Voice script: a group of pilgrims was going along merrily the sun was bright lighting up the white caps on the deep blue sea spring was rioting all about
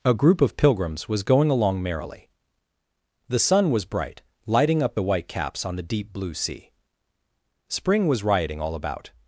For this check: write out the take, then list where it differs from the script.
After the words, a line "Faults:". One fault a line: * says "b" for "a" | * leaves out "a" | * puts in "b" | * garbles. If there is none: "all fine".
a group of pilgrims was going along merrily the sun was bright lighting up the white caps on the deep blue sea spring was rioting all about
Faults:
all fine